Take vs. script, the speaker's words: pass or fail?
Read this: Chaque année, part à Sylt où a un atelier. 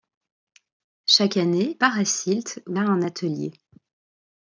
pass